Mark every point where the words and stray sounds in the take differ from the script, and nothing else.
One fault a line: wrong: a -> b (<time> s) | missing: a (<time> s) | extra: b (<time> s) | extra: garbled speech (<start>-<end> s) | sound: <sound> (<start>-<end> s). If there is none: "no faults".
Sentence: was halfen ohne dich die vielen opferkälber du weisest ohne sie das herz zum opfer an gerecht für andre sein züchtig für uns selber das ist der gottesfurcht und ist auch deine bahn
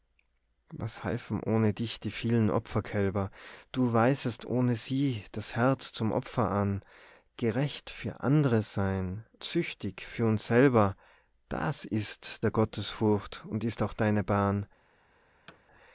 sound: thud (15.5-15.6 s)